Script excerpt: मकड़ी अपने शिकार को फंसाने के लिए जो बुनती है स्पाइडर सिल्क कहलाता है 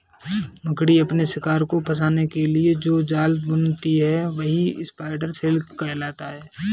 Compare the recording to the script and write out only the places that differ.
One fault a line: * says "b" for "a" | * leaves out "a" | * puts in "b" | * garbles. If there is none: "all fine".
* puts in "जाल"
* puts in "वही"